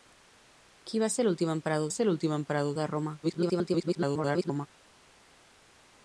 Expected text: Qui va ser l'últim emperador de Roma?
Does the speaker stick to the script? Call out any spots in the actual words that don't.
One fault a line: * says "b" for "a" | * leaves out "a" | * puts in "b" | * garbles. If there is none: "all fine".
* puts in "ser l'últim emperador"
* garbles